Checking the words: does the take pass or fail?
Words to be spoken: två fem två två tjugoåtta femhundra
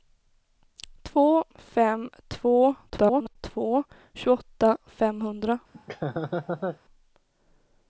fail